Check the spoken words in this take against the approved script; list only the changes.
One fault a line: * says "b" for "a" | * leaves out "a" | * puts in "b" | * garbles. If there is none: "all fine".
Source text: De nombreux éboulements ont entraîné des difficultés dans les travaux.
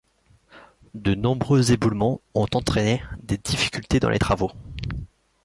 all fine